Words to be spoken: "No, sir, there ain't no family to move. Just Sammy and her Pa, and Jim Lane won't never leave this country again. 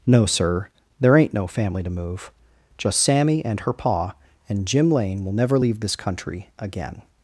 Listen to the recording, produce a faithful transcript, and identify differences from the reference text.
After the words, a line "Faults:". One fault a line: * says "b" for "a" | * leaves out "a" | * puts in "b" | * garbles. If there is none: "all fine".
"No, sir, there ain't no family to move. Just Sammy and her Pa, and Jim Lane will never leave this country again.
Faults:
* says "will" for "won't"